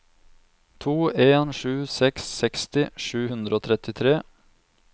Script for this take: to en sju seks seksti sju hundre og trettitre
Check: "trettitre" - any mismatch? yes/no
no